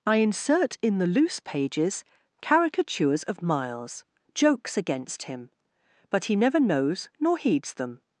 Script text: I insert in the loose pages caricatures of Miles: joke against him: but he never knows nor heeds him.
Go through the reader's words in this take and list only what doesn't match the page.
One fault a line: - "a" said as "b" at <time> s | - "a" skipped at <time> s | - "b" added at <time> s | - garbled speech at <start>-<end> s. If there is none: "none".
- "joke" said as "jokes" at 4.3 s
- "him" said as "them" at 7.8 s